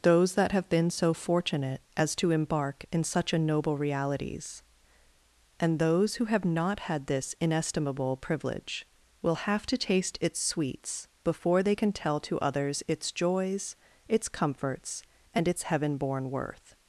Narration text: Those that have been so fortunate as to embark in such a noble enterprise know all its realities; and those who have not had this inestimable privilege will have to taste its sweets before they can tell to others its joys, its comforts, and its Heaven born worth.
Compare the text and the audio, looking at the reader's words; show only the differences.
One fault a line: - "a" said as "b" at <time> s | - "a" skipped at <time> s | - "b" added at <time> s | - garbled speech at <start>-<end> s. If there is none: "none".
- "enterprise know all its" skipped at 3.8 s